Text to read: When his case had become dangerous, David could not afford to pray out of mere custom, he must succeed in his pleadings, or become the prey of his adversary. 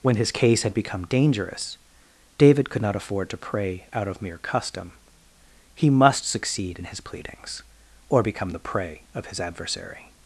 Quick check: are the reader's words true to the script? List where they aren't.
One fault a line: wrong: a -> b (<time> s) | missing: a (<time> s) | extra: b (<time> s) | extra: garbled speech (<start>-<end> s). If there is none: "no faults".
no faults